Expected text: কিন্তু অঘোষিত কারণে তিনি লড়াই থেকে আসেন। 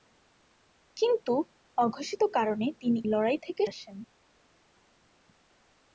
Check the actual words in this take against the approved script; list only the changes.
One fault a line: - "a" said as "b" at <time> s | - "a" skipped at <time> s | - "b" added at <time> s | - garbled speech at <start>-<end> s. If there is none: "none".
none